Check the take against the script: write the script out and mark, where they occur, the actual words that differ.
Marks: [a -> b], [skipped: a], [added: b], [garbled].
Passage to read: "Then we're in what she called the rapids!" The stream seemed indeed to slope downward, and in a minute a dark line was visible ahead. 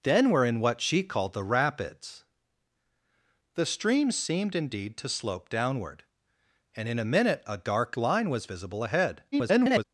"Then we're in what she called the rapids!" The stream seemed indeed to slope downward, and in a minute a dark line was visible ahead. [garbled]